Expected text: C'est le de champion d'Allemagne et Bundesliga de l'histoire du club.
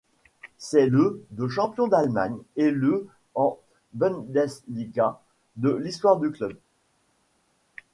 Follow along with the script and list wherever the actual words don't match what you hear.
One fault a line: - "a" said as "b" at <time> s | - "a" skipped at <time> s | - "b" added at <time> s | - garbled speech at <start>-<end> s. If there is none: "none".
- "le en" added at 2.7 s